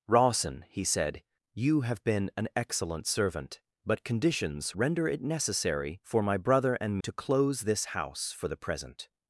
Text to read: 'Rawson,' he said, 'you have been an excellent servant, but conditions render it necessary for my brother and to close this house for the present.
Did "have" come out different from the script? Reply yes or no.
no